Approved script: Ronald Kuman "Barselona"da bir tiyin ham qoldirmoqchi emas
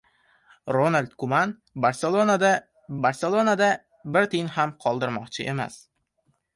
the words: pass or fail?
fail